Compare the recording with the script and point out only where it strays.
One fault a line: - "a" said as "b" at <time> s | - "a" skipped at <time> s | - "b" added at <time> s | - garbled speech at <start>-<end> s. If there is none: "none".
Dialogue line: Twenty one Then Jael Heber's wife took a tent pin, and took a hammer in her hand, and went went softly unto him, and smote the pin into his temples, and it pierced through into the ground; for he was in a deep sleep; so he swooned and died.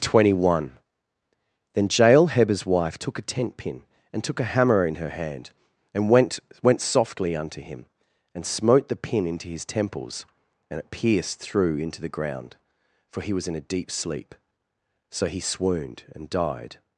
none